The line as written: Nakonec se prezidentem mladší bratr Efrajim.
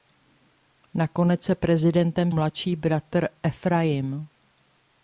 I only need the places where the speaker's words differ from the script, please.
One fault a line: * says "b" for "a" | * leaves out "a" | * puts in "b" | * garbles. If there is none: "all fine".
all fine